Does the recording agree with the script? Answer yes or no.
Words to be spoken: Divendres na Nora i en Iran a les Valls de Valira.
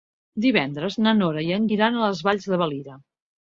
yes